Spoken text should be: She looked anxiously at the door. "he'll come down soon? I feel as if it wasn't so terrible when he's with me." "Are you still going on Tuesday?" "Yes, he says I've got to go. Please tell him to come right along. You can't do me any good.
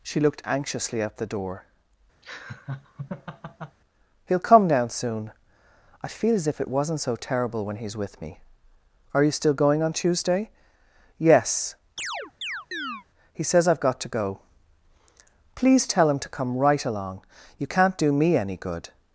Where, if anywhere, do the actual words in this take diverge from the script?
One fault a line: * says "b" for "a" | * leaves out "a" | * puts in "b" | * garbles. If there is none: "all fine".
all fine